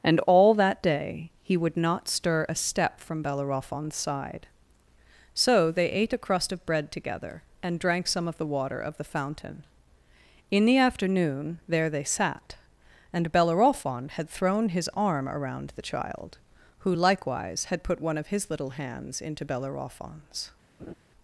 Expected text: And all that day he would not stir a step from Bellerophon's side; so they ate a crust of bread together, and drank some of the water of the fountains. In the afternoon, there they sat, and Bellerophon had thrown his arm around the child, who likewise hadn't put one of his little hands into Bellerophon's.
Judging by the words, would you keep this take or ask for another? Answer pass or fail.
fail